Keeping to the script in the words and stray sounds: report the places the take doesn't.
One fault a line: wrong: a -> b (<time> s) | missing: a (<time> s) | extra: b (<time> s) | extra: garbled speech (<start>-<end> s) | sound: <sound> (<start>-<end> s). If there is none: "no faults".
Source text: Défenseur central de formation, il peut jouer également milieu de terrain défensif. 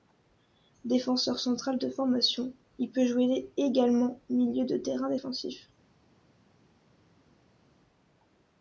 no faults